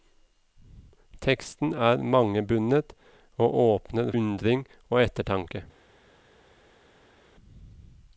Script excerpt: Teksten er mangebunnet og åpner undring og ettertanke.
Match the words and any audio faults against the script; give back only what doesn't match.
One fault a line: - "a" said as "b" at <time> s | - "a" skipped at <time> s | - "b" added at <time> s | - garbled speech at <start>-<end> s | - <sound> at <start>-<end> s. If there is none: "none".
none